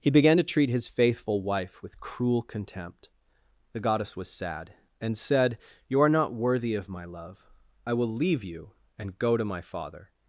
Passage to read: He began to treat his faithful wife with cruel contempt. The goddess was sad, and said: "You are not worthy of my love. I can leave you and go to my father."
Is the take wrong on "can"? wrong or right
wrong